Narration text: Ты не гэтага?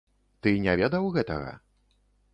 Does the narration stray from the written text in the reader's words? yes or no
yes